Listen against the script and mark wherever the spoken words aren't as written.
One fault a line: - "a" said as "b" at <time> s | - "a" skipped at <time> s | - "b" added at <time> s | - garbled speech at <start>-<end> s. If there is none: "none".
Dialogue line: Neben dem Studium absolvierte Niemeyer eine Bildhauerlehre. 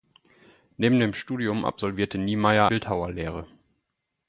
- "eine" skipped at 2.7 s